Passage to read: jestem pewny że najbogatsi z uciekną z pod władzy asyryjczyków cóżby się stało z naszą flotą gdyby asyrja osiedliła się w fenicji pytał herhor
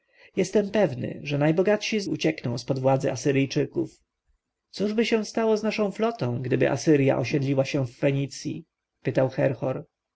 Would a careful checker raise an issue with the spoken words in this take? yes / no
no